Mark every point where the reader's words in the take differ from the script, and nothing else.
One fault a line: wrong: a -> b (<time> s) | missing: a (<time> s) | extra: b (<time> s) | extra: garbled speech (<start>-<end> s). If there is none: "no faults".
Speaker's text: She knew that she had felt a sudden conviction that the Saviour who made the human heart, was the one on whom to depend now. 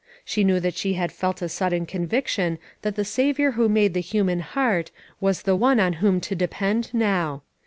no faults